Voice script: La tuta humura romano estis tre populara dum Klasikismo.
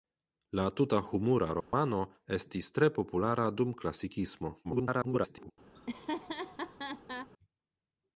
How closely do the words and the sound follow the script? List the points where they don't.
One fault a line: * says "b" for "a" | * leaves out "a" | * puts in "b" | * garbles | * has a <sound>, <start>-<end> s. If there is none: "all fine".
* has a dropout, 1.6-1.7 s
* garbles
* has a laugh, 5.7-7.3 s